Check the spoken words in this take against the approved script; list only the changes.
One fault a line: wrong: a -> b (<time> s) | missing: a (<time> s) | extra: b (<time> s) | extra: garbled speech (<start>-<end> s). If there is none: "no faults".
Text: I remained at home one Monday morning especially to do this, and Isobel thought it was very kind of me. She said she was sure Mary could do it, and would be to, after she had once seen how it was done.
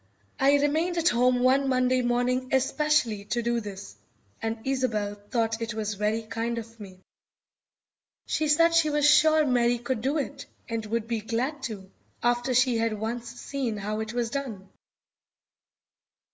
extra: glad (11.2 s)